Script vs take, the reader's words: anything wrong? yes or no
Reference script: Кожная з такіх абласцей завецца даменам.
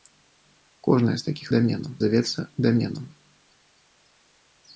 yes